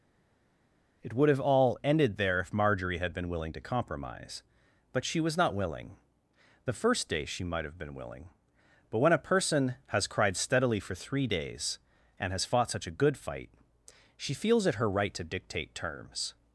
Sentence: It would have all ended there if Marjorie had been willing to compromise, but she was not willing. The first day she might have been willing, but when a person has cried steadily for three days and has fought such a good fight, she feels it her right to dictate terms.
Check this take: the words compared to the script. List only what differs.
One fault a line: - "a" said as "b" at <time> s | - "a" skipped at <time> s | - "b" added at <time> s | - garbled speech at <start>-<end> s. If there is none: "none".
none